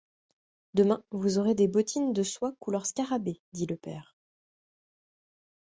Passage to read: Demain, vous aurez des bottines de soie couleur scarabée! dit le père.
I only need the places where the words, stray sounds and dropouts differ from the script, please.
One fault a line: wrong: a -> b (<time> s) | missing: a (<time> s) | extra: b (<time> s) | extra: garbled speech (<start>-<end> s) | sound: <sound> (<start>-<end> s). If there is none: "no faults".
no faults